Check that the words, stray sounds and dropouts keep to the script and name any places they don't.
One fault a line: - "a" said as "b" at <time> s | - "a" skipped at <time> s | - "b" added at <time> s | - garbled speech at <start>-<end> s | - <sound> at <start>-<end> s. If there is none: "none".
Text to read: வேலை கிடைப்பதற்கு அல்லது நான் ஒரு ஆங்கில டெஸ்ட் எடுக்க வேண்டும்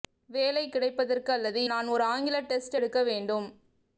none